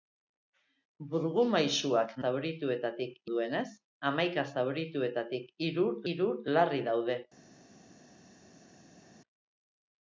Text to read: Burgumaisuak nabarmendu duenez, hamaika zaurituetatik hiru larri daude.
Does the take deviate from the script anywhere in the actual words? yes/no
yes